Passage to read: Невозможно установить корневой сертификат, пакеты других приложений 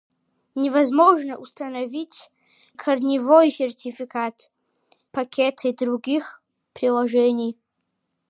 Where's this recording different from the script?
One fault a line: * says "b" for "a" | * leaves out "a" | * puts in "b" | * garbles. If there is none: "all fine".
all fine